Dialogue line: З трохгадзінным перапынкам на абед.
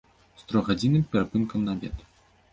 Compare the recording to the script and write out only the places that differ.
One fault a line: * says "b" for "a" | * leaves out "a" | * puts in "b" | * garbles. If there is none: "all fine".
all fine